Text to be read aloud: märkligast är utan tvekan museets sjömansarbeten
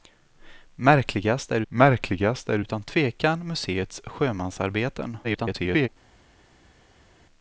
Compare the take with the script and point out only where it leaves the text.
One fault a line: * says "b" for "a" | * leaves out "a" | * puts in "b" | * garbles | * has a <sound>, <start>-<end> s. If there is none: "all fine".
* puts in "märkligast är"
* garbles